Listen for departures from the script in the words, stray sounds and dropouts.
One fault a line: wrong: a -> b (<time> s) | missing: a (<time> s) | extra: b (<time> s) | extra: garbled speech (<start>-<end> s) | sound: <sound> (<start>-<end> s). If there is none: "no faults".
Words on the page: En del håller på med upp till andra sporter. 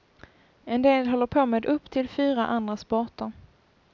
extra: fyra (2.1 s)